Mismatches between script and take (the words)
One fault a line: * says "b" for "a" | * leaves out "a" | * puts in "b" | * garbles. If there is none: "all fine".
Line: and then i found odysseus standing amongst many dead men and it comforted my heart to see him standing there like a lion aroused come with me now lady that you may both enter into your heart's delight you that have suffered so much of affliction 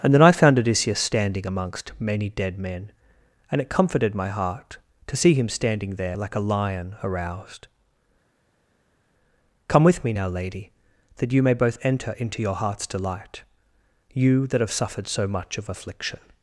all fine